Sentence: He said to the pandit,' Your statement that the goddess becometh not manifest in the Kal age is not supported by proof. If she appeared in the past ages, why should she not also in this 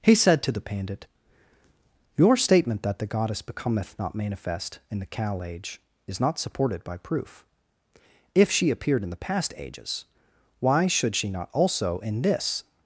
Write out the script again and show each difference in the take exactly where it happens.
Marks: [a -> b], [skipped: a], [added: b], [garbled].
He said to the pandit,' Your statement that the goddess becometh not manifest in the Kal age is not supported by proof. If she appeared in the past ages, why should she not also in this